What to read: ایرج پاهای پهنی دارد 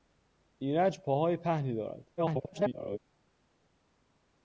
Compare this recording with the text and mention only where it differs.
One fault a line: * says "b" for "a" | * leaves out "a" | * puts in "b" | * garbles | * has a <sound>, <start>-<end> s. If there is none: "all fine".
* garbles